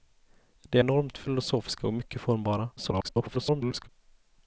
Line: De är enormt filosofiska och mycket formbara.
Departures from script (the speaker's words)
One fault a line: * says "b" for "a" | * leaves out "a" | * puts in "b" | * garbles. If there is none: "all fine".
* leaves out "är"
* garbles